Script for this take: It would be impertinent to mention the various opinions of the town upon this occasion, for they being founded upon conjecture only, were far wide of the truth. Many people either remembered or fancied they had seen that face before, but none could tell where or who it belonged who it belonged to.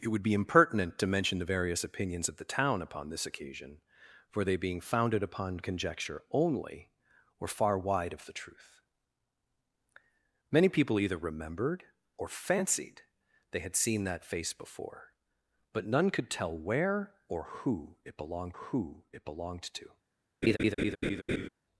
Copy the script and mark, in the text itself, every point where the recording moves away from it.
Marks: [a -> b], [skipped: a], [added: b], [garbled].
It would be impertinent to mention the various opinions of the town upon this occasion, for they being founded upon conjecture only, were far wide of the truth. Many people either remembered or fancied they had seen that face before, but none could tell where or who it belonged who it belonged to.